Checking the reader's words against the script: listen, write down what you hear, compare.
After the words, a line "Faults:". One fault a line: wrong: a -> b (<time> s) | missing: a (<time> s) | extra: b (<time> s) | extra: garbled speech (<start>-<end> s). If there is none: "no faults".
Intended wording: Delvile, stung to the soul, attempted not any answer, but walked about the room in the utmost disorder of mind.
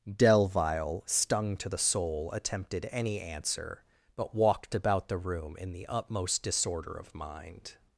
Delvile, stung to the soul, attempted any answer, but walked about the room in the utmost disorder of mind.
Faults:
missing: not (2.9 s)